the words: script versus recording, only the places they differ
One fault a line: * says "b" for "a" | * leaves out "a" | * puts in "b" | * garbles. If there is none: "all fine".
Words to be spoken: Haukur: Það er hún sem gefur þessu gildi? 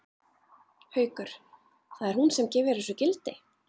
all fine